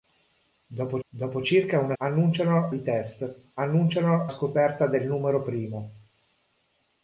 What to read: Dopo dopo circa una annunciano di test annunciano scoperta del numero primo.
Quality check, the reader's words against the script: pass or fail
pass